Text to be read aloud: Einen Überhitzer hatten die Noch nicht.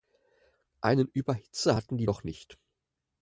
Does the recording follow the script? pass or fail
pass